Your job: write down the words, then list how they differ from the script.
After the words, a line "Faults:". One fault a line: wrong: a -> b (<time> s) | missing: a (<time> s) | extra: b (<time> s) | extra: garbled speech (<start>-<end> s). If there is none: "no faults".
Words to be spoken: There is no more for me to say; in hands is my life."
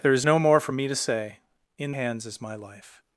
There is no more for me to say; in hands is my life."
Faults:
no faults